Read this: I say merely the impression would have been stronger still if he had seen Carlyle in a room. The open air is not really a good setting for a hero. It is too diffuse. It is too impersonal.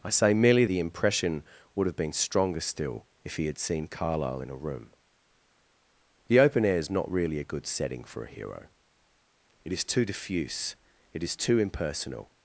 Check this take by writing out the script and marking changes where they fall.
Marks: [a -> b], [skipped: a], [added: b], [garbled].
I say merely the impression would have been stronger still if he had seen Carlyle in a room. The open air is not really a good setting for a hero. It is too diffuse. It is too impersonal.